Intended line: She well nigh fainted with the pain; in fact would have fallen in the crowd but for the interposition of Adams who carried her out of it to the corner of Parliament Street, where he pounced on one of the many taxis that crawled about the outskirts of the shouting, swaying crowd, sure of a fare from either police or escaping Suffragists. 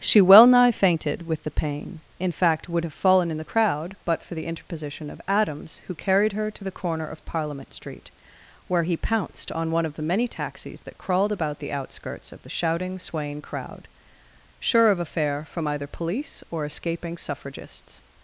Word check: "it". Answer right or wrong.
wrong